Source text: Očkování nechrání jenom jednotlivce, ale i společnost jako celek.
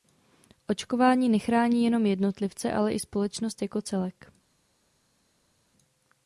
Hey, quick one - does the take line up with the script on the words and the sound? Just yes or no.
yes